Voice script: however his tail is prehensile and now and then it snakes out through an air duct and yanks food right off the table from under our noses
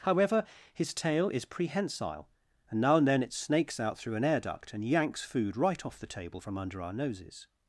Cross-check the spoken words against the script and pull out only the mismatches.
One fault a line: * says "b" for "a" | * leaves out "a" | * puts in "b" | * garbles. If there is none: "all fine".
all fine